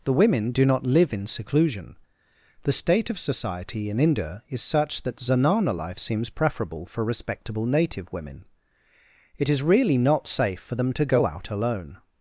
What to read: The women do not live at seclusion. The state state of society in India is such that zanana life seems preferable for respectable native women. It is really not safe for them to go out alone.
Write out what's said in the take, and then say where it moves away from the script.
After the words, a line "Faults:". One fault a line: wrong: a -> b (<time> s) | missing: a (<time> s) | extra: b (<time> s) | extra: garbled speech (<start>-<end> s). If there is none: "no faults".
The women do not live in seclusion. The state of society in India is such that zanana life seems preferable for respectable native women. It is really not safe for them to go out alone.
Faults:
wrong: at -> in (1.1 s)
missing: state (3.1 s)